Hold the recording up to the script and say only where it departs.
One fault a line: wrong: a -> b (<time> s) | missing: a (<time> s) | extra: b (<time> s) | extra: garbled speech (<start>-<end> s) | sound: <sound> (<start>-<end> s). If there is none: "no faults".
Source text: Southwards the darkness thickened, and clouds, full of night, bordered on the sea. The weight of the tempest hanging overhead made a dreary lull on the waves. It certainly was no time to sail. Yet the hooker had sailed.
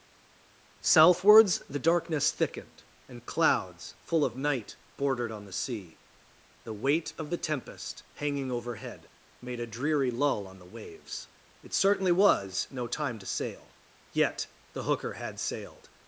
no faults